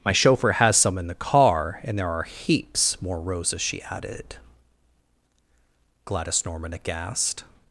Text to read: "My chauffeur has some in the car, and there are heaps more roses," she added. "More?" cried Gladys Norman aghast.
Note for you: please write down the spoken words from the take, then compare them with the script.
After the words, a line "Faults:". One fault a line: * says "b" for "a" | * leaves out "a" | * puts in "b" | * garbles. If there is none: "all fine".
"My chauffeur has some in the car, and there are heaps more roses," she added. "Gladys Norman aghast.
Faults:
* leaves out "More cried"